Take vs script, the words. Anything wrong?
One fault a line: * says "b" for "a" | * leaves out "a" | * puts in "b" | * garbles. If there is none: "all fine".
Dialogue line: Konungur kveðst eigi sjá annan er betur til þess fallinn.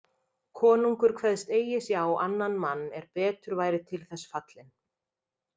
* puts in "mann"
* puts in "væri"